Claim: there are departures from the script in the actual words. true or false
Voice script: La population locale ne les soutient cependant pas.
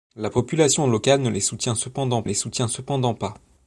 true